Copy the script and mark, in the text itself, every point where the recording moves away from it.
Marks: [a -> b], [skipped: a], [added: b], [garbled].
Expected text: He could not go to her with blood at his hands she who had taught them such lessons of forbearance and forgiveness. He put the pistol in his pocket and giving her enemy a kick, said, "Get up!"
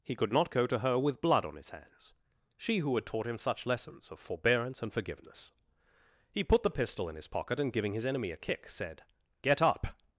He could not go to her with blood [at -> on] his hands she who had taught [them -> him] such lessons of forbearance and forgiveness. He put the pistol in his pocket and giving [her -> his] enemy a kick, said, "Get up!"